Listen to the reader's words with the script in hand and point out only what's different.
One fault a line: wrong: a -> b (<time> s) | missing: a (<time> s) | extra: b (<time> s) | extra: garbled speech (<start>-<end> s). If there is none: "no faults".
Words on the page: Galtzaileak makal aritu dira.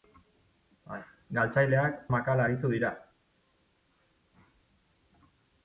no faults